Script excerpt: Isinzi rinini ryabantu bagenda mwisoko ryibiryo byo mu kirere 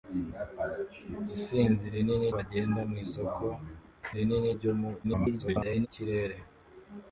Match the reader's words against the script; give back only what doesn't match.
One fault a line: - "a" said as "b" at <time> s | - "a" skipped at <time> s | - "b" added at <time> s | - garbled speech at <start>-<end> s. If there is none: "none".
- "ryabantu" skipped at 2.3 s
- "ryibiryo" said as "rinini" at 4.2 s
- garbled speech at 5.0-5.9 s